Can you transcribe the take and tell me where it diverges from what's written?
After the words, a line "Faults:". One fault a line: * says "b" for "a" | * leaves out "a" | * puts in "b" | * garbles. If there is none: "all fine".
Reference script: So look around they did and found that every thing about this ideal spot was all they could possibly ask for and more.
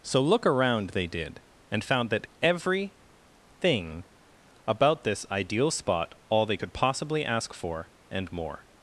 So look around they did and found that every thing about this ideal spot all they could possibly ask for and more.
Faults:
* leaves out "was"